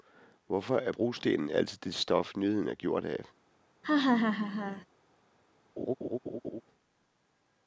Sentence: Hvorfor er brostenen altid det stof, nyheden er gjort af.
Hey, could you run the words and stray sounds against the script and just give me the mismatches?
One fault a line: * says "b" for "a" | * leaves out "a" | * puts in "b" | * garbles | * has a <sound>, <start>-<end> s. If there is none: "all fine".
* has a laugh, 3.8-4.9 s
* has a laugh, 5.8-6.6 s